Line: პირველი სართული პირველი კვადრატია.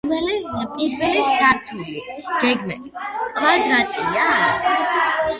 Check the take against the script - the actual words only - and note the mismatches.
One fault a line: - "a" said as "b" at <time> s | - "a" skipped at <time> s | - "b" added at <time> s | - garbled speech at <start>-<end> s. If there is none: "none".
- "პირველი" said as "გეგმით" at 2.4 s